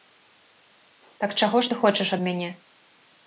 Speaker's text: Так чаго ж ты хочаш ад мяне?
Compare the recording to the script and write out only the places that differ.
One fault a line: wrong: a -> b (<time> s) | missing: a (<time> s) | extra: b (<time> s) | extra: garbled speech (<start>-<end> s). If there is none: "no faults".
no faults